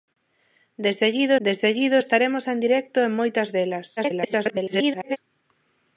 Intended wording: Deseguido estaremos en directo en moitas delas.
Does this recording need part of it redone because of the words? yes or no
yes